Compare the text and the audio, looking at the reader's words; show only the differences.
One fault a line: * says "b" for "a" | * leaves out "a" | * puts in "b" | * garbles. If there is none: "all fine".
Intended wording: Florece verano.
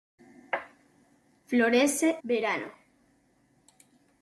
all fine